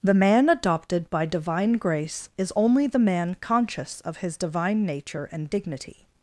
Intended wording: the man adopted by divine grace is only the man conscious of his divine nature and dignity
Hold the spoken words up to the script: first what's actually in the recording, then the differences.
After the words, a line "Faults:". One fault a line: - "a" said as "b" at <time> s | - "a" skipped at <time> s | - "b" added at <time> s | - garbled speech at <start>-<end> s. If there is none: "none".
the man adopted by divine grace is only the man conscious of his divine nature and dignity
Faults:
none